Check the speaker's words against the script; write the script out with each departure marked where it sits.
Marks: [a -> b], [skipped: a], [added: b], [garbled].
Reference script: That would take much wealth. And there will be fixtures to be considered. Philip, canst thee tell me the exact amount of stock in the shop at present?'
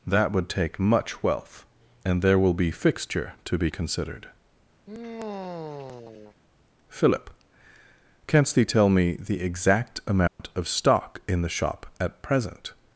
That would take much wealth. And there will be [fixtures -> fixture] to be considered. Philip, canst thee tell me the exact amount of stock in the shop at present?'